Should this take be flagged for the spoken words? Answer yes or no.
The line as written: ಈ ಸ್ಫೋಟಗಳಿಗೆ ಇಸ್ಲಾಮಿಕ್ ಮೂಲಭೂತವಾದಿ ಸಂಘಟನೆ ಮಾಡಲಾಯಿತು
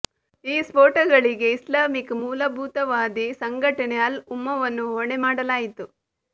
yes